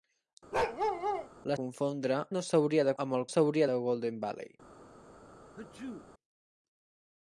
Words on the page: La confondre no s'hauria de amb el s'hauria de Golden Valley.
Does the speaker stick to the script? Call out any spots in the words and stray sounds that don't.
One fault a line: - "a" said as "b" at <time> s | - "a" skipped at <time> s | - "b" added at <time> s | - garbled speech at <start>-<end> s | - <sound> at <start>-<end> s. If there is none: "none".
- bark at 0.5-1.3 s
- sneeze at 5.6-6.1 s